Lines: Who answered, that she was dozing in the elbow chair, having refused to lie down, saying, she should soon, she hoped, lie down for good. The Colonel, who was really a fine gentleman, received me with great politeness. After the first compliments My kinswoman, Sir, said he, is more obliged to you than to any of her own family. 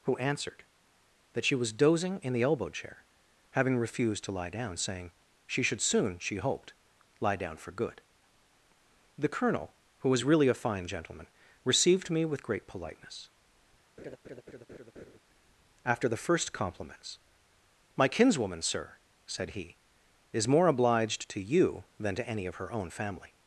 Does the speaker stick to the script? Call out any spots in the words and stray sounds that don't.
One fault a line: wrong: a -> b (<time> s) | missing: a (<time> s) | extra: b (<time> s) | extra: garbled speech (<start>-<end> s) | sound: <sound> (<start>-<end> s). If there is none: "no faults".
sound: laugh (14.0-15.2 s)